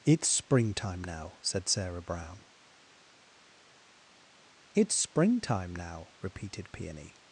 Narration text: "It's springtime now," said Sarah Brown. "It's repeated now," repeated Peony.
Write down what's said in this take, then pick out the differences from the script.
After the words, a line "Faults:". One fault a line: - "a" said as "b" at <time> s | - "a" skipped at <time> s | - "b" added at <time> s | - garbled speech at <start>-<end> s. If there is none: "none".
"It's springtime now," said Sarah Brown. "It's springtime now," repeated Peony.
Faults:
- "repeated" said as "springtime" at 4.9 s